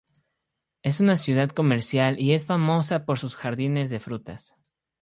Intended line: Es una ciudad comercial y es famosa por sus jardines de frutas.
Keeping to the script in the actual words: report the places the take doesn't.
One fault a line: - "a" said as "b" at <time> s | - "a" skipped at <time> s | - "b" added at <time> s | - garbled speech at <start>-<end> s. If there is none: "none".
none